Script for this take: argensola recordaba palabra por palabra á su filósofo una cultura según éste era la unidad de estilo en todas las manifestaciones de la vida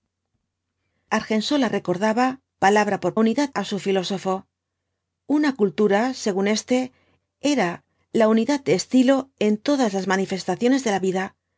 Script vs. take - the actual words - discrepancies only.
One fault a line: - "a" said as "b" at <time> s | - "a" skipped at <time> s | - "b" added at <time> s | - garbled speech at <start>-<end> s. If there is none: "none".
- "palabra" said as "unidad" at 3.2 s